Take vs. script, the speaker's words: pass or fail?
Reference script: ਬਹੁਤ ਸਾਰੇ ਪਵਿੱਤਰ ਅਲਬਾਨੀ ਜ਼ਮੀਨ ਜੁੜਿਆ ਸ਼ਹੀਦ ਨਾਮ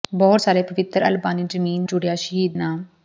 pass